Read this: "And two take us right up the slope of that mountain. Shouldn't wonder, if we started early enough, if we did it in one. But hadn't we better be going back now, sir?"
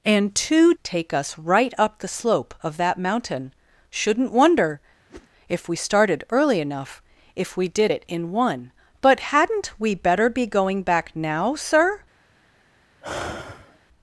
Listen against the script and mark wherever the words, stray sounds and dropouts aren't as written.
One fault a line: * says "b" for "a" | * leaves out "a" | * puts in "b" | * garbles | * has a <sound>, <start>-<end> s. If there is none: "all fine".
* has a whoosh, 5.1-5.3 s
* has a sigh, 13.0-13.8 s